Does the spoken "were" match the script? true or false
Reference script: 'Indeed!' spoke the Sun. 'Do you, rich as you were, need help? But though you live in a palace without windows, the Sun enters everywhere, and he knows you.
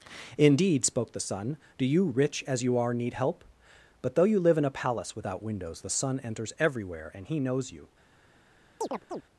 false